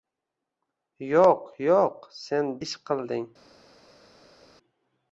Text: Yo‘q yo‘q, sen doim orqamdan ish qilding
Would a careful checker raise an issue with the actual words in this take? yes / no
yes